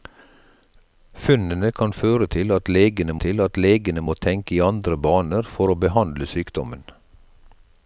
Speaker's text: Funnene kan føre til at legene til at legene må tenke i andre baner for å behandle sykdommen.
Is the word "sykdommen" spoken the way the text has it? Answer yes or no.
yes